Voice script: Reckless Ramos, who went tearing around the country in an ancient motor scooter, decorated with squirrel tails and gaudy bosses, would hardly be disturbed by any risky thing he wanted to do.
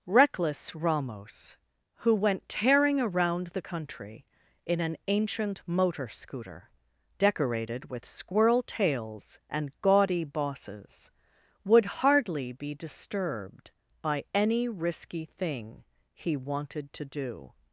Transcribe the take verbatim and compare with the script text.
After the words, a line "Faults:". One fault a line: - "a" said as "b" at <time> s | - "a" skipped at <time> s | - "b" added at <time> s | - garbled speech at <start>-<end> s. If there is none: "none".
Reckless Ramos, who went tearing around the country in an ancient motor scooter, decorated with squirrel tails and gaudy bosses, would hardly be disturbed by any risky thing he wanted to do.
Faults:
none